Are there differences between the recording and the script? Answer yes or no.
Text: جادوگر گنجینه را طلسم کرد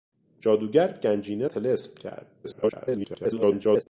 yes